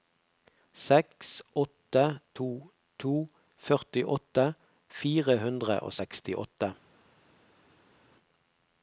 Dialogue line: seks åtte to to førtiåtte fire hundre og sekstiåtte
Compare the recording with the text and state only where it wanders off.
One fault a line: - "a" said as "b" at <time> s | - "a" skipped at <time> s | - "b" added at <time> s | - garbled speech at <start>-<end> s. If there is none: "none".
none